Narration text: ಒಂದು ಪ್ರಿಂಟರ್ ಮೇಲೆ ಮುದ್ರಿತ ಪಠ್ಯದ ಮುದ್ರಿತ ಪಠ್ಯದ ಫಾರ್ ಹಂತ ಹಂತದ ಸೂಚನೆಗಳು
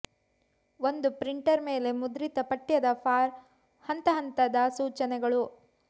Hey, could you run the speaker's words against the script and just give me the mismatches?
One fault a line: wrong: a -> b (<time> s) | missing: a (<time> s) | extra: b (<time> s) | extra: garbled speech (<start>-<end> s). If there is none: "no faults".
missing: ಮುದ್ರಿತ ಪಠ್ಯದ (2.9 s)